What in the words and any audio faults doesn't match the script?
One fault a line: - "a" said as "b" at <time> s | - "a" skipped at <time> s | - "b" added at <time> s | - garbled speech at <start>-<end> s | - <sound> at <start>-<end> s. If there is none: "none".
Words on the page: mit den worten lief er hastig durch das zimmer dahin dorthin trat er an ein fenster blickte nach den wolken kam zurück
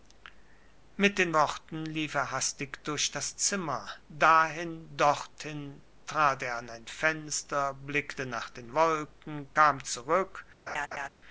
- laugh at 10.7-11.1 s